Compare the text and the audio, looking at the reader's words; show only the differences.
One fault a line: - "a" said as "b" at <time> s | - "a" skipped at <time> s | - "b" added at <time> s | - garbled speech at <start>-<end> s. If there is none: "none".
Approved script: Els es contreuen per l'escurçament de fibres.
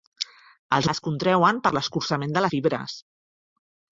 none